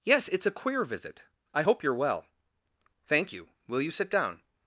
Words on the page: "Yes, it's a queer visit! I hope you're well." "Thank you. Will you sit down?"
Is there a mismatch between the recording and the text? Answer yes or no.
no